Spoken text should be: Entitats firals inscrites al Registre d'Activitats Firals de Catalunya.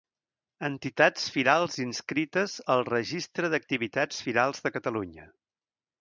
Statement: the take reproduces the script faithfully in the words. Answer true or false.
true